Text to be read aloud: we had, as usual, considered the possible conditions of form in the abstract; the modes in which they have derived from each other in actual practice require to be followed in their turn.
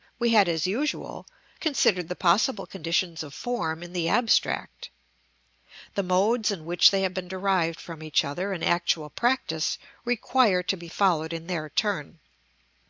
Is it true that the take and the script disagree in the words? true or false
true